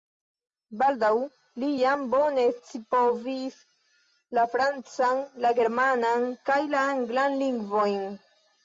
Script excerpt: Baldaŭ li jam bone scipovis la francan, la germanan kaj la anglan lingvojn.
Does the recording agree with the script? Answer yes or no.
yes